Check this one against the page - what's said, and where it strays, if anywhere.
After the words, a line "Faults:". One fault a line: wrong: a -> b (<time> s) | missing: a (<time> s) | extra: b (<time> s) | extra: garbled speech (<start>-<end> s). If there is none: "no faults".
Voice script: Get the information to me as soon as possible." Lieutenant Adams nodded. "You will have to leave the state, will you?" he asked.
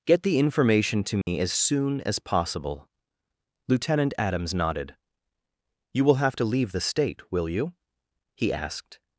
Get the information to me as soon as possible." Lieutenant Adams nodded. "You will have to leave the state, will you?" he asked.
Faults:
no faults